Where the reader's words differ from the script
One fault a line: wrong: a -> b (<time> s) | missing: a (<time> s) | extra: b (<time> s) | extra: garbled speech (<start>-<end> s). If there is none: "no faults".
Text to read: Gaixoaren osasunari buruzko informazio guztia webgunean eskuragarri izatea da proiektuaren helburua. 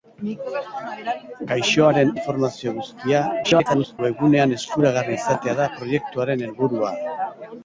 missing: osasunari buruzko (2.1 s)
extra: garbled speech (3.4-4.0 s)